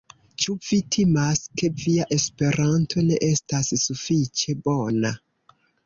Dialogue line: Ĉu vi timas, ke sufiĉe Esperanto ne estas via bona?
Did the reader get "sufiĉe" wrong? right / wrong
wrong